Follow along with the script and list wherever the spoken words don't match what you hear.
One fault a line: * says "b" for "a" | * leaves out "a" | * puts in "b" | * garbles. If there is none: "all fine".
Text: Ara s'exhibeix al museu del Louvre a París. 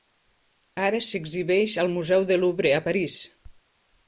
all fine